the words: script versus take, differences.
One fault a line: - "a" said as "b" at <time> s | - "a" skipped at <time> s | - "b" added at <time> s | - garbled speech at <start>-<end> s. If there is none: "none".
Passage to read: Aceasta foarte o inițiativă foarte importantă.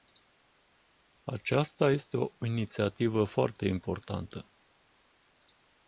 - "foarte" said as "este" at 1.9 s